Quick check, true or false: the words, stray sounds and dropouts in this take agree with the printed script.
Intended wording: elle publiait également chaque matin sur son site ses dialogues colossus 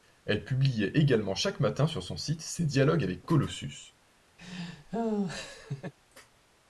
false